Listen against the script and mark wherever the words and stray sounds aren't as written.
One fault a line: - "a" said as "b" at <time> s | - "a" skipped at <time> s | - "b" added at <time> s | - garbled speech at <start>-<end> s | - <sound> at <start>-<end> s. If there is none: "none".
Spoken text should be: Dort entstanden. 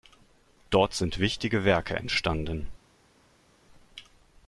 - "sind wichtige Werke" added at 0.9 s